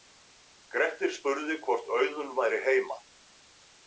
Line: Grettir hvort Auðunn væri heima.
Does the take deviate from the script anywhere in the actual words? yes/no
yes